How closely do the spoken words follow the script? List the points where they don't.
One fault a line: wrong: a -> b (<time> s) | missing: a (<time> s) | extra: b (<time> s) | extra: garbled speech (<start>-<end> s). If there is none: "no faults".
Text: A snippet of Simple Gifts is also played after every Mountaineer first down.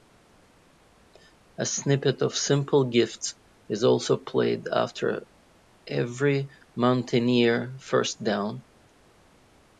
no faults